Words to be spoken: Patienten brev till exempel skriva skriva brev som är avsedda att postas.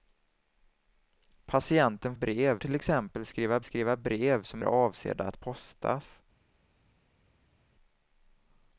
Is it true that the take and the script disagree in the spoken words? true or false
false